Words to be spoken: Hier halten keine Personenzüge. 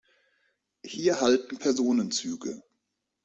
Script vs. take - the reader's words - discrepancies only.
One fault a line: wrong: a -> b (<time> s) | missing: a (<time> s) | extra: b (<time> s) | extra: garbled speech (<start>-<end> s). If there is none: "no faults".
missing: keine (1.6 s)